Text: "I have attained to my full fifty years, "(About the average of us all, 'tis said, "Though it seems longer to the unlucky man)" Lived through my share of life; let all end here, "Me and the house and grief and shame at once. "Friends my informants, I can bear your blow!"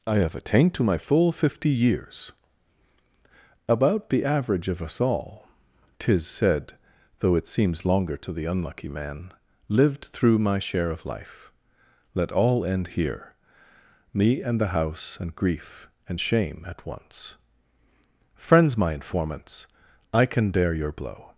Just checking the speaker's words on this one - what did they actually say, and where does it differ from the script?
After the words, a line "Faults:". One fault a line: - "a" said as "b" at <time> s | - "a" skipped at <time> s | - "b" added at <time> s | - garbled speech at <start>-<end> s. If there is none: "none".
"I have attained to my full fifty years, "(About the average of us all, 'tis said, "Though it seems longer to the unlucky man)" Lived through my share of life; let all end here, "Me and the house and grief and shame at once. "Friends my informants, I can dare your blow!"
Faults:
- "bear" said as "dare" at 20.5 s